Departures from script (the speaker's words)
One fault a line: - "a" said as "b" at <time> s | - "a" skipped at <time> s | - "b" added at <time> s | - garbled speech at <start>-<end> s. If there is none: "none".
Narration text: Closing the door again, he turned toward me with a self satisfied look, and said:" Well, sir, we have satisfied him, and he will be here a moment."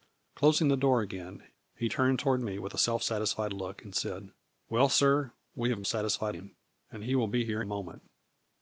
none